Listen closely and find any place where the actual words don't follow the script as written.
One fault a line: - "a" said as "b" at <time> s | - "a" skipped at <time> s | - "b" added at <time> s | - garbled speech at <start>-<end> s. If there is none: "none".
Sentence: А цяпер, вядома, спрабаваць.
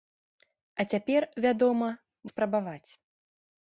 none